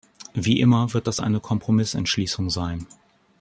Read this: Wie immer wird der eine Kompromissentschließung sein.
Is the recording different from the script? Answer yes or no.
yes